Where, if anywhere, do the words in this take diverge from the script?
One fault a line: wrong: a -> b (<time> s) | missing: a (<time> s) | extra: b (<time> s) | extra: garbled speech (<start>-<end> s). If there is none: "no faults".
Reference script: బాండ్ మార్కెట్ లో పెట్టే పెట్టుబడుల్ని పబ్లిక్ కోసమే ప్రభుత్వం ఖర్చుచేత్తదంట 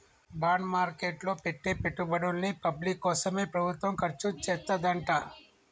no faults